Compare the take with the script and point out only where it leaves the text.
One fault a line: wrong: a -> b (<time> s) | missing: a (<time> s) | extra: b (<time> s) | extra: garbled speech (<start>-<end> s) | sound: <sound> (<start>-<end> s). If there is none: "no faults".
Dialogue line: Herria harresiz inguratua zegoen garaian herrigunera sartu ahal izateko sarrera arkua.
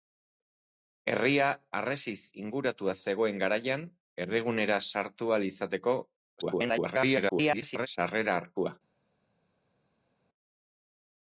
extra: garbled speech (6.4-7.9 s)